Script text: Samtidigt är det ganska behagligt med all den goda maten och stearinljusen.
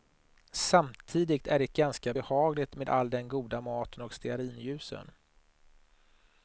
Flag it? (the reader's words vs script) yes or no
no